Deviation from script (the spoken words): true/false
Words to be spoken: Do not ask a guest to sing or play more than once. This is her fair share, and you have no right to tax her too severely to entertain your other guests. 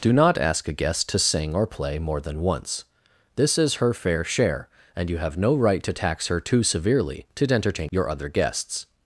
false